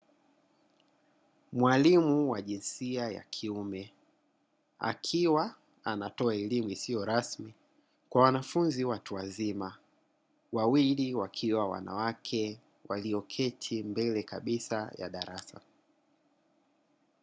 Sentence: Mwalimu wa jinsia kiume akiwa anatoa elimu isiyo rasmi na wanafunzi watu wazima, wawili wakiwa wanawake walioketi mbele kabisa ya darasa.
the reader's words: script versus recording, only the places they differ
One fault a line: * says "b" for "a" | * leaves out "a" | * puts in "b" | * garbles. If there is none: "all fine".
* puts in "ya"
* says "kwa" for "na"